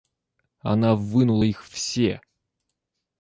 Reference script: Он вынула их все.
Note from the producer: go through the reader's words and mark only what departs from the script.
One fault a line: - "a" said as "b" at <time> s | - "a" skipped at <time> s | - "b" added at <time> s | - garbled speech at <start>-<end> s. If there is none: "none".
- "Он" said as "Она" at 0.6 s